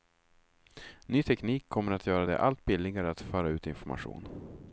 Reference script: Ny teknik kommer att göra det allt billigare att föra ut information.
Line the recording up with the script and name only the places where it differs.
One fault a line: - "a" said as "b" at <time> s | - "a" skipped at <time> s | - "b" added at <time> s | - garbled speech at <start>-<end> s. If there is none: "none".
none